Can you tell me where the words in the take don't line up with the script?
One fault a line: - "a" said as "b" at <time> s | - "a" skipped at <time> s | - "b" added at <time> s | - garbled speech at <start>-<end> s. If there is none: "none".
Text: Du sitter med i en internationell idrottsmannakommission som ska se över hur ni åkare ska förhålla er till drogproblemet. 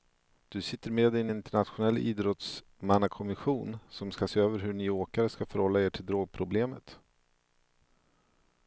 none